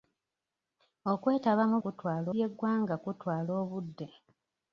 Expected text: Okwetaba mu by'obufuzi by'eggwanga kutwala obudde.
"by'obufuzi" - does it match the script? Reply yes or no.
no